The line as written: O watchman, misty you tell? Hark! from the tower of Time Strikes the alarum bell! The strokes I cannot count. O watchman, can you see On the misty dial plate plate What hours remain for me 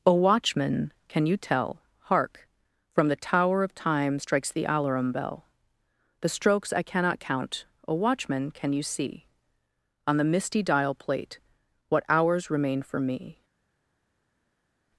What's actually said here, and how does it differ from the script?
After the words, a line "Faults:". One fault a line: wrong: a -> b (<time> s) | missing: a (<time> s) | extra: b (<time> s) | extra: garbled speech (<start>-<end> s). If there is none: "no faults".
O watchman, can you tell? Hark! from the tower of Time Strikes the alarum bell! The strokes I cannot count. O watchman, can you see On the misty dial plate What hours remain for me
Faults:
wrong: misty -> can (1.1 s)
missing: plate (11.4 s)